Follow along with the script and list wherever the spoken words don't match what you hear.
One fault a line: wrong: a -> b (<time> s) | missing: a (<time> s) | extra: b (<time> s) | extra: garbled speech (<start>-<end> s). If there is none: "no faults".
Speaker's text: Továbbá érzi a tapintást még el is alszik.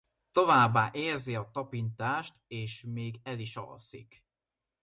extra: és (2.5 s)